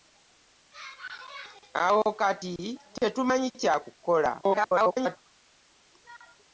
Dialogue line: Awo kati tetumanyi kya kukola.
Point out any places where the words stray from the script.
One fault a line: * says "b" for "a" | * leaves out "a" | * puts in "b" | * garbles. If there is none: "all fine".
* garbles